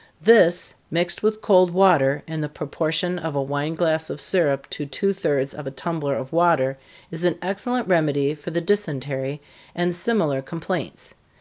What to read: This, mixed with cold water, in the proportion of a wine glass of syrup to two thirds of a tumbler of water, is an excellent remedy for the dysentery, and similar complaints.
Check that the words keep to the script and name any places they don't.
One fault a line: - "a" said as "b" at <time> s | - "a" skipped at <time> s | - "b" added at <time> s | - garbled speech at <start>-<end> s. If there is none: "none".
none